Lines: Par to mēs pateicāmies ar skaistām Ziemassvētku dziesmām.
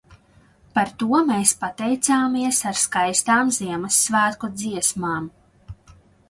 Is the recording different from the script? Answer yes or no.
no